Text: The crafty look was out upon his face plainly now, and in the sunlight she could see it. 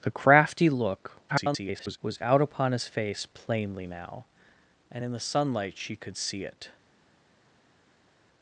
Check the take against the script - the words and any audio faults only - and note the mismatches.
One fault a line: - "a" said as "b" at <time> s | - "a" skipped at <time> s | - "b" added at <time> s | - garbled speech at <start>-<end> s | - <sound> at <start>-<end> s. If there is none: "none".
- garbled speech at 1.3-2.0 s